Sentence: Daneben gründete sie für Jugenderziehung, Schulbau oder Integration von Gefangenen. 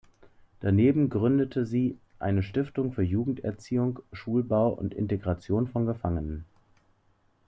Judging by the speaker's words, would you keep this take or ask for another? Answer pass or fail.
fail